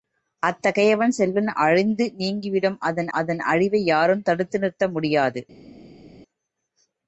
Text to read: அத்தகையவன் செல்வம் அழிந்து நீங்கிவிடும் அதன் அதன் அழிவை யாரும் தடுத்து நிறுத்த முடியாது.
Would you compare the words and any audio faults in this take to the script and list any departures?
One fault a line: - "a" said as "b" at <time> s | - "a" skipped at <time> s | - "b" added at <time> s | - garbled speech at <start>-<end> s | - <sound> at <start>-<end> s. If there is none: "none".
none